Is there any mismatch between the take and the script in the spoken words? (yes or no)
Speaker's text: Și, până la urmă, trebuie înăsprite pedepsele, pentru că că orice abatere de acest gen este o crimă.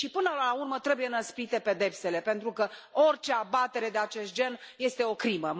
yes